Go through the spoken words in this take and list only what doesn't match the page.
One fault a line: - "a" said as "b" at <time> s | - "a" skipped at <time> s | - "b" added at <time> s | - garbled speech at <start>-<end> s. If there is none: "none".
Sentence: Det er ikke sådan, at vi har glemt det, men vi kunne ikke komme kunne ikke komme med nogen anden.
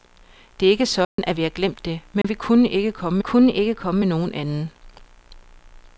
none